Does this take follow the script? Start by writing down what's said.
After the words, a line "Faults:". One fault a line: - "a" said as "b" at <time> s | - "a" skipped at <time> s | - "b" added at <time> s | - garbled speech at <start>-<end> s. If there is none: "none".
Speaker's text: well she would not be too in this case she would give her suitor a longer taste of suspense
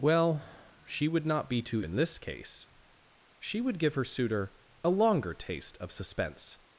well she would not be too in this case she would give her suitor a longer taste of suspense
Faults:
none